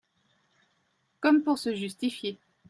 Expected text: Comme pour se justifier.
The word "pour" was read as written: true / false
true